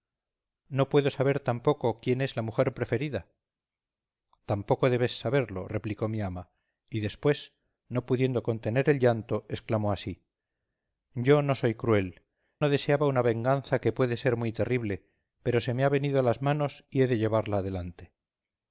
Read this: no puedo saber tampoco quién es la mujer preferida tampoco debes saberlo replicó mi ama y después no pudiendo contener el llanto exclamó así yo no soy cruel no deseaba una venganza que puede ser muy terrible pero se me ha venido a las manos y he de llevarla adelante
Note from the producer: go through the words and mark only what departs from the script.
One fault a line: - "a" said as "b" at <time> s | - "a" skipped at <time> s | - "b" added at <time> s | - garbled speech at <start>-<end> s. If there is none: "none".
none